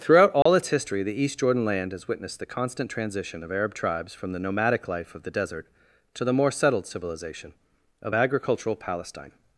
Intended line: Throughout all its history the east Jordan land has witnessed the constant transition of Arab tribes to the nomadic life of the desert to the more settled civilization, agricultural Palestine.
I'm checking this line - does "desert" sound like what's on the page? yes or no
yes